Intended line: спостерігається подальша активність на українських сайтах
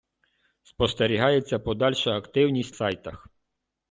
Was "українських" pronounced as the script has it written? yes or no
no